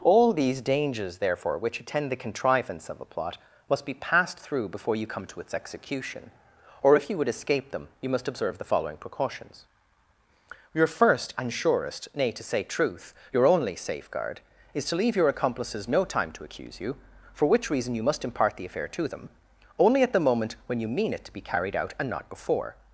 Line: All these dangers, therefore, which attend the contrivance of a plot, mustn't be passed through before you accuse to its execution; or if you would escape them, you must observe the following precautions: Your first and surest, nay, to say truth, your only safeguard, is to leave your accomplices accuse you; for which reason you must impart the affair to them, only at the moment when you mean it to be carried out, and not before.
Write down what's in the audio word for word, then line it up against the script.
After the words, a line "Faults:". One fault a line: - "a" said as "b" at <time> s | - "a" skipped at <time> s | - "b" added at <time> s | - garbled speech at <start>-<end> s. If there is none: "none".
All these dangers, therefore, which attend the contrivance of a plot, must be passed through before you come to its execution; or if you would escape them, you must observe the following precautions: Your first and surest, nay, to say truth, your only safeguard, is to leave your accomplices no time to accuse you; for which reason you must impart the affair to them, only at the moment when you mean it to be carried out, and not before.
Faults:
- "mustn't" said as "must" at 3.7 s
- "accuse" said as "come" at 5.0 s
- "no time to" added at 15.9 s